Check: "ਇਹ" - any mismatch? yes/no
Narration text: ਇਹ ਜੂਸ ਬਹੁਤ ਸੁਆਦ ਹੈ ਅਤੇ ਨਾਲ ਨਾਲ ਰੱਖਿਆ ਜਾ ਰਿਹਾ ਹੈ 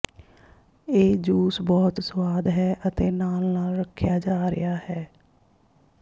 no